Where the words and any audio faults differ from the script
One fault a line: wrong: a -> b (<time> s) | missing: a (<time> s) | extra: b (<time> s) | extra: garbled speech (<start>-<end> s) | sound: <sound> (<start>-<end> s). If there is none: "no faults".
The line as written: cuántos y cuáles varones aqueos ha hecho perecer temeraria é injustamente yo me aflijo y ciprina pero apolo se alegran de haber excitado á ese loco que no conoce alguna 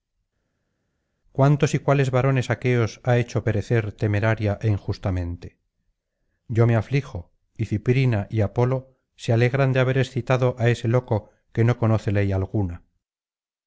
wrong: pero -> y (8.3 s)
extra: ley (12.1 s)